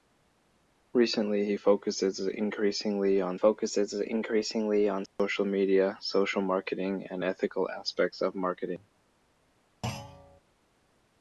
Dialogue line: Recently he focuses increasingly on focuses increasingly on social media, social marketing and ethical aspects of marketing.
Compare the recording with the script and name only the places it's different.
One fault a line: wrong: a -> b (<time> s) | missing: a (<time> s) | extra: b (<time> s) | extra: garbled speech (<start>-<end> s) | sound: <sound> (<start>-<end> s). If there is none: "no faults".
sound: dropout (5.1-5.2 s)
sound: thud (9.8-10.4 s)